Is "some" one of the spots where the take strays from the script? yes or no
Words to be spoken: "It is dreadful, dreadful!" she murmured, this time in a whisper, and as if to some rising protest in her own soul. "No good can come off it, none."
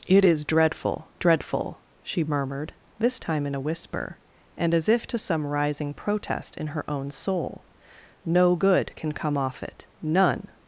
no